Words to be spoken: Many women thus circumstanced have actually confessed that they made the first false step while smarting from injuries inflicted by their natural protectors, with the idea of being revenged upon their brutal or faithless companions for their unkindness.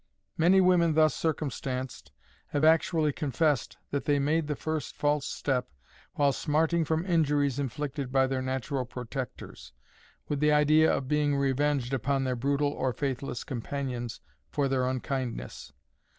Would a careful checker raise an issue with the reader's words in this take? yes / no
no